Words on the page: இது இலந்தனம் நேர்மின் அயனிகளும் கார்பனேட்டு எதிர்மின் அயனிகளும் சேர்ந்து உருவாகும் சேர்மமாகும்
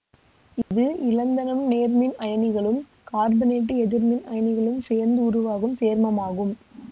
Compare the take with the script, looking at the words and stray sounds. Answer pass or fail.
fail